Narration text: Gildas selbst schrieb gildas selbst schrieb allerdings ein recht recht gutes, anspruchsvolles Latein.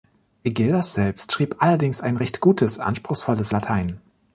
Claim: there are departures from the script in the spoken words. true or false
true